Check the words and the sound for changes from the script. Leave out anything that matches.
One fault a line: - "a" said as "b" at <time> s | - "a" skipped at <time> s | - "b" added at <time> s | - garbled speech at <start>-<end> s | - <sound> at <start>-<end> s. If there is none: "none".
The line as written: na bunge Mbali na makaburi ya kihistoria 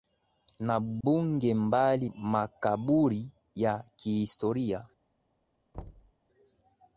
- dropout at 1.0-1.0 s
- "na" skipped at 2.1 s
- thud at 5.7-6.1 s